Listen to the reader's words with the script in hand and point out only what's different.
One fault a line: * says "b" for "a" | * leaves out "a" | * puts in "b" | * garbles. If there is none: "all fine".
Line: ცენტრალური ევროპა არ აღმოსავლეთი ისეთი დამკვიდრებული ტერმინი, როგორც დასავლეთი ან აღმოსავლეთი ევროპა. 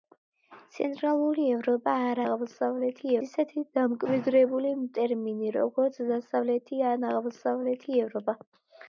all fine